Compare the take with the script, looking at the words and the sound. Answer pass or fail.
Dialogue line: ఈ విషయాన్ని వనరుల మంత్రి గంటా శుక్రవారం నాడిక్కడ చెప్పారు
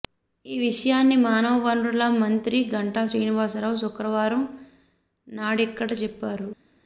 fail